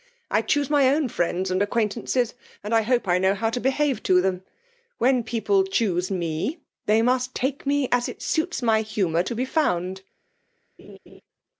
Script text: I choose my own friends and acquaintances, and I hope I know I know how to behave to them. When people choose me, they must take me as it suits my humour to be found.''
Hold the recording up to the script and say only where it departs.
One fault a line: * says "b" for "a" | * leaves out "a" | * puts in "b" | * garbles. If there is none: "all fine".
* leaves out "I know"